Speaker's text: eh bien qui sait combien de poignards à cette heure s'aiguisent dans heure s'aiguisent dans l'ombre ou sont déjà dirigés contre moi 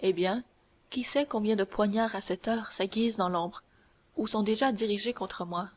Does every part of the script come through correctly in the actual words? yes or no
no